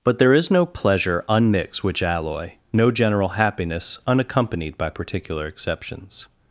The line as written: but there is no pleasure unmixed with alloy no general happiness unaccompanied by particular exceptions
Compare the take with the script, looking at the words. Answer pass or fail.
fail